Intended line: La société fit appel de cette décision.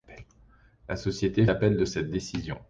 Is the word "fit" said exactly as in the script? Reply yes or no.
no